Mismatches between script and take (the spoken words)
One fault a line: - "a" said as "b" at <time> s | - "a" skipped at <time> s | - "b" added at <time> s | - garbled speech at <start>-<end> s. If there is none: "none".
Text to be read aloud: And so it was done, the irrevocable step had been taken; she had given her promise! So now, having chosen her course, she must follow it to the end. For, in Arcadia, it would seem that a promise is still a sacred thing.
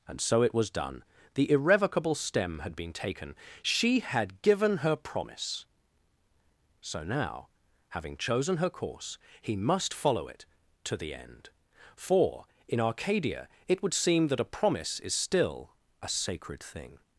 - "step" said as "stem" at 2.1 s
- "she" said as "he" at 9.4 s